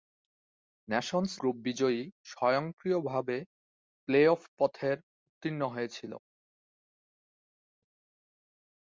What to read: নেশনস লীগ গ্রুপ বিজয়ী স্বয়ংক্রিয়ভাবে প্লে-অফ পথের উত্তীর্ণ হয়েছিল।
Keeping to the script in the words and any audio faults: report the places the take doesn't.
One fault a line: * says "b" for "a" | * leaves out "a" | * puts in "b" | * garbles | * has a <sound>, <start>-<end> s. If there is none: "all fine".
* leaves out "লীগ"